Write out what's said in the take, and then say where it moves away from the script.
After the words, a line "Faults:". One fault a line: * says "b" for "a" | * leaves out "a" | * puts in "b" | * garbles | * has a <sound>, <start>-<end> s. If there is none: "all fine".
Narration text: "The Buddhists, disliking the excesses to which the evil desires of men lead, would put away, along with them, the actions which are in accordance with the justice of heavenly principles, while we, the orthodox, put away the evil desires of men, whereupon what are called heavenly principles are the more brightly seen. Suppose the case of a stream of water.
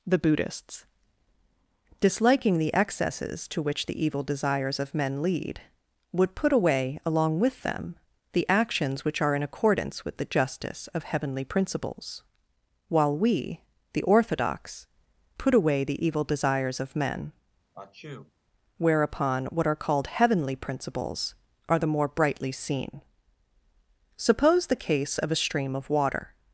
"The Buddhists, disliking the excesses to which the evil desires of men lead, would put away, along with them, the actions which are in accordance with the justice of heavenly principles, while we, the orthodox, put away the evil desires of men, whereupon what are called heavenly principles are the more brightly seen. Suppose the case of a stream of water.
Faults:
* has a sneeze, 17.7-18.3 s